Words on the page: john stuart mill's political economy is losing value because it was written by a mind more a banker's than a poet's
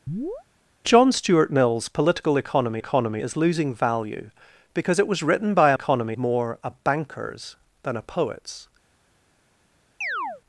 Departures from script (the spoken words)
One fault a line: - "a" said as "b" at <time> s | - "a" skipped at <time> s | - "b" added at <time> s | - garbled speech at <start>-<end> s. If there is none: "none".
- "economy" added at 2.8 s
- "mind" said as "economy" at 5.7 s